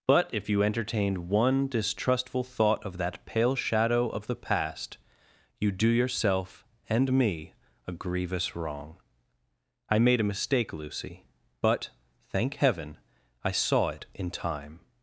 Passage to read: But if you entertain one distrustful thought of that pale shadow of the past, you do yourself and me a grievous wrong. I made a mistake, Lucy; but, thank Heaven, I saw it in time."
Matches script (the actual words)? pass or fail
fail